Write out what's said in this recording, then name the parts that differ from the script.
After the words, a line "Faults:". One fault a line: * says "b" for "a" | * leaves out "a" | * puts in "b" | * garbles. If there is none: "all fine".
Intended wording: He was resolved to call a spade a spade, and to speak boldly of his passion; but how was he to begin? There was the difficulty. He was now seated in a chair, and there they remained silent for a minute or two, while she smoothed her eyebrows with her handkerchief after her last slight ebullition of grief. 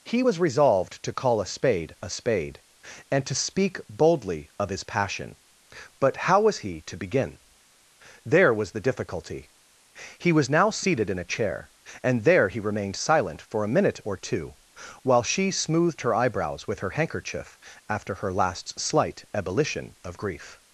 He was resolved to call a spade a spade, and to speak boldly of his passion; but how was he to begin? There was the difficulty. He was now seated in a chair, and there he remained silent for a minute or two, while she smoothed her eyebrows with her handkerchief after her last slight ebullition of grief.
Faults:
* says "he" for "they"